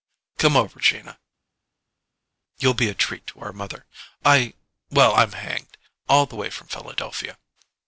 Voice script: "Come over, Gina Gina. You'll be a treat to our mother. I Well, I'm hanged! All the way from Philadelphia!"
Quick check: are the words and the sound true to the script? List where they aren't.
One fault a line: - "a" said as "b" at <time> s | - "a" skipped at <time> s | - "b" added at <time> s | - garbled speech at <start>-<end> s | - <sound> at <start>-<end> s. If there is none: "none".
- "Gina" skipped at 1.2 s